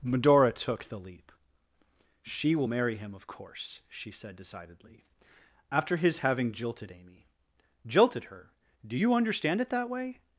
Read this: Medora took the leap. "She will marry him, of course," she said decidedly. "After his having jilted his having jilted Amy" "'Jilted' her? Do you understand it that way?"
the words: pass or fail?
fail